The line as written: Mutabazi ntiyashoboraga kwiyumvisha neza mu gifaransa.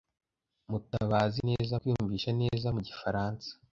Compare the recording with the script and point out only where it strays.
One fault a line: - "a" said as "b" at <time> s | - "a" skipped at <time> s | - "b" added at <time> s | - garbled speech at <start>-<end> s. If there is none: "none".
- "ntiyashoboraga" said as "neza" at 1.5 s